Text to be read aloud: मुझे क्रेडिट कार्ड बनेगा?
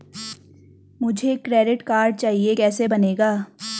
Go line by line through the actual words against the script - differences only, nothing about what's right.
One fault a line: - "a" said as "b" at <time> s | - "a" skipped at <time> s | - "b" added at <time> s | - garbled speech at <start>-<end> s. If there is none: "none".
- "चाहिए कैसे" added at 2.1 s